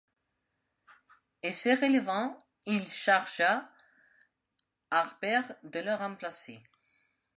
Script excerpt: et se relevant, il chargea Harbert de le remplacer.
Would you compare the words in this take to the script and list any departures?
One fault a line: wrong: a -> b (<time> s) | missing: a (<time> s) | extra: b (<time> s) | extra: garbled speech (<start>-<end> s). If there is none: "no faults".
no faults